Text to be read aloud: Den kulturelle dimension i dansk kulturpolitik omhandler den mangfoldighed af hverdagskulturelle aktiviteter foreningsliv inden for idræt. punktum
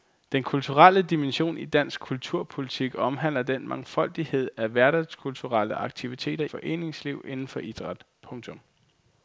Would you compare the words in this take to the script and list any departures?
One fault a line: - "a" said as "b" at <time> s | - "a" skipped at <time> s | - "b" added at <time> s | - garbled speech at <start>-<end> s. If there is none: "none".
none